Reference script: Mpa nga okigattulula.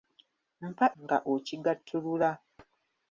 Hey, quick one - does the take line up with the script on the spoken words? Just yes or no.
yes